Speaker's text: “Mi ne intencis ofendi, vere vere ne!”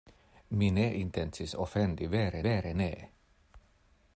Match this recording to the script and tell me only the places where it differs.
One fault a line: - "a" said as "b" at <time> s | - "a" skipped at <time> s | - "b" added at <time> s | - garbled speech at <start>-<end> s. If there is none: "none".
none